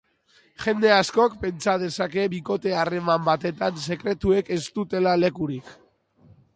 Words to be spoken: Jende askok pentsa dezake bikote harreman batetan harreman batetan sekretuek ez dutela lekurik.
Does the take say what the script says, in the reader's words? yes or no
no